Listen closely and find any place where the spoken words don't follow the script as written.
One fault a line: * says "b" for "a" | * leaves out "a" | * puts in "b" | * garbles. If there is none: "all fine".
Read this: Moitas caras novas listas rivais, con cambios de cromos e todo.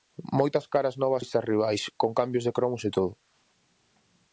all fine